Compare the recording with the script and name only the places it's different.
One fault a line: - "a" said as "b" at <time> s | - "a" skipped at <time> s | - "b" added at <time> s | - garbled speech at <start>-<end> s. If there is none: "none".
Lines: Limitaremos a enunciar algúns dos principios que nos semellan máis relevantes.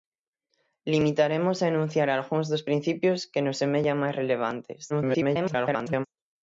- garbled speech at 4.9-6.1 s